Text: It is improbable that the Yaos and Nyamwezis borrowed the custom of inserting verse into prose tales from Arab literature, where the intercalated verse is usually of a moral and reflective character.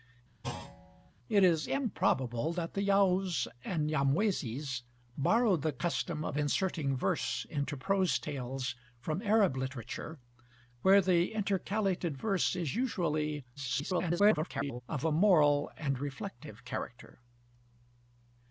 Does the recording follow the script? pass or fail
fail